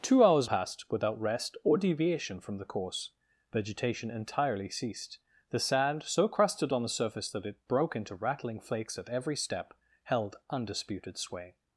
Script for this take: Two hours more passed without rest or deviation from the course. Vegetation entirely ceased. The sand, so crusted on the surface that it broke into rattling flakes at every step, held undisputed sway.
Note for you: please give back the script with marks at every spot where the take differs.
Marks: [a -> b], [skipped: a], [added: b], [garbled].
Two hours [skipped: more] passed without rest or deviation from the course. Vegetation entirely ceased. The sand, so crusted on the surface that it broke into rattling flakes at every step, held undisputed sway.